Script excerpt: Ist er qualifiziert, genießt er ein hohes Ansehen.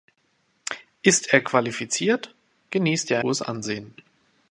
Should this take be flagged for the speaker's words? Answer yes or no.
yes